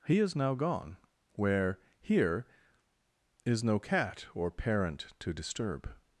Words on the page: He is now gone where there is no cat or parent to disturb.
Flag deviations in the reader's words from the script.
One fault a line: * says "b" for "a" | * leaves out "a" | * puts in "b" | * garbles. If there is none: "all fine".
* says "here" for "there"